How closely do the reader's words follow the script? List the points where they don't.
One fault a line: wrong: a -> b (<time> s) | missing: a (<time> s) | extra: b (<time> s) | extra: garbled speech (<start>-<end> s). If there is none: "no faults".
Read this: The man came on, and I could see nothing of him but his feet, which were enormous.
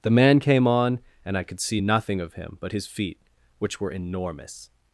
no faults